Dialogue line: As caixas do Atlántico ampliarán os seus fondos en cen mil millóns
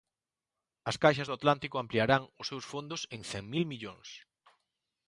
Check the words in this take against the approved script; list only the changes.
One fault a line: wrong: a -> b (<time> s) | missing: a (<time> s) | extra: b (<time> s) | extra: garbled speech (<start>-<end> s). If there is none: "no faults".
no faults